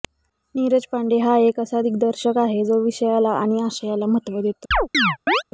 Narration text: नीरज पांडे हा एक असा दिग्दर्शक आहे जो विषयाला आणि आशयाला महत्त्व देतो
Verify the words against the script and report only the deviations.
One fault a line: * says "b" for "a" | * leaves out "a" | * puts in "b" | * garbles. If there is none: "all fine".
all fine